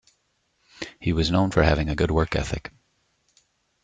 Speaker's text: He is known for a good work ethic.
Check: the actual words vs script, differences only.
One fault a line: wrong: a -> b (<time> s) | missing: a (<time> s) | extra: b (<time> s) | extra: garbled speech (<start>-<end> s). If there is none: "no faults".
wrong: is -> was (1.1 s)
extra: having (1.6 s)